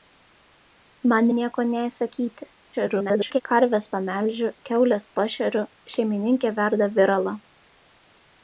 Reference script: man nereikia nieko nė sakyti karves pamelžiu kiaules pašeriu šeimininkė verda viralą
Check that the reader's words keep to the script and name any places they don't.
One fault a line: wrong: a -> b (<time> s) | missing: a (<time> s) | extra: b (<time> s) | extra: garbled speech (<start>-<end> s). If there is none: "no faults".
missing: nereikia (1.3 s)
extra: garbled speech (2.7-3.4 s)